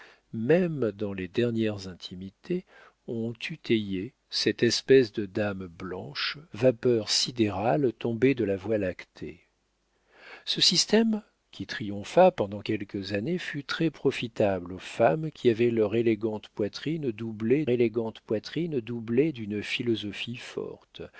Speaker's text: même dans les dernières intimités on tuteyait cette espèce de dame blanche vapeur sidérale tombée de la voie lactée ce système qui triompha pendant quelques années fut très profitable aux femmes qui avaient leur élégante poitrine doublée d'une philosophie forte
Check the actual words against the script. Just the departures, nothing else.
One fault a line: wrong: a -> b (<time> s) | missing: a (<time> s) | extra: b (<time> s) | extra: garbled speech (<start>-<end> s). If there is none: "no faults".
extra: élégante poitrine doublée (17.7 s)